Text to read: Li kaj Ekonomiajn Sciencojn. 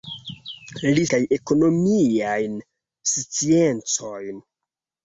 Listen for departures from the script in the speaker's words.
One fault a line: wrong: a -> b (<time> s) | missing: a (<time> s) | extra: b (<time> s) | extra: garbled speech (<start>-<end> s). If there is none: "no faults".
no faults